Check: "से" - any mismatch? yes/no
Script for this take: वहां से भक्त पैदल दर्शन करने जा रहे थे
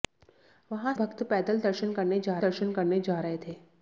yes